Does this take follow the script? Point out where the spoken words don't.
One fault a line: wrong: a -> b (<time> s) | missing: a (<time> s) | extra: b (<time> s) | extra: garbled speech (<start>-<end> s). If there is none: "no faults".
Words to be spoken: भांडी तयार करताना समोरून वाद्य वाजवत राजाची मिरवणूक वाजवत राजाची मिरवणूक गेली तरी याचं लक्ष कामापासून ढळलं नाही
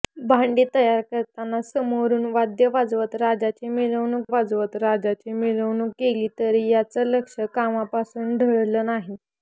no faults